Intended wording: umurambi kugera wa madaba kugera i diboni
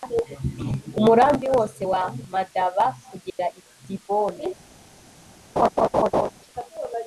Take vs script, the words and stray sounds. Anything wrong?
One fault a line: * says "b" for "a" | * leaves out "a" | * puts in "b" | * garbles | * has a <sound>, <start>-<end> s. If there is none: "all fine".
* says "wose" for "kugera"
* has a dropout, 3.3-3.4 s
* has a laugh, 5.6-6.3 s